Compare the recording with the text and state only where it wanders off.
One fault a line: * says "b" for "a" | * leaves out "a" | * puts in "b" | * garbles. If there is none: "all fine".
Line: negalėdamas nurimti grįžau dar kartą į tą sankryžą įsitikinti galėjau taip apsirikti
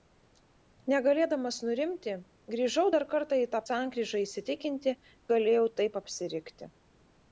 all fine